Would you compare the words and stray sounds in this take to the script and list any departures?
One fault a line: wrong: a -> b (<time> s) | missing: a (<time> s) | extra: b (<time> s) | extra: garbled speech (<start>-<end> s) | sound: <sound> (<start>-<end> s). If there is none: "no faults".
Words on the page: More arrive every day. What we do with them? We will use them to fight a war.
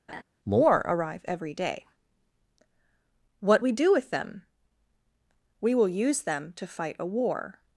sound: laugh (0.1-0.2 s)